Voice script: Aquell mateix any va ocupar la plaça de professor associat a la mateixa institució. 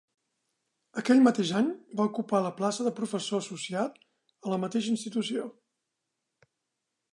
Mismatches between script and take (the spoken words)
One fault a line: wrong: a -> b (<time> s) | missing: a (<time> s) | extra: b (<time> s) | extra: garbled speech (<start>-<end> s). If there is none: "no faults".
no faults